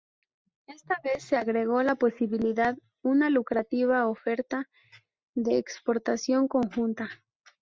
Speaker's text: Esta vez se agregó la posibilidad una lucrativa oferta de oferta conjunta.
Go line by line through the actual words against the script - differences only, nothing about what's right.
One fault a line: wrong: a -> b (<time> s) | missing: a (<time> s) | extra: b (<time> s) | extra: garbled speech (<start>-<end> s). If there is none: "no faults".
wrong: oferta -> exportación (5.6 s)